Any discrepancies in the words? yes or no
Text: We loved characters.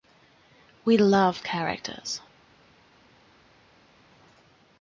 no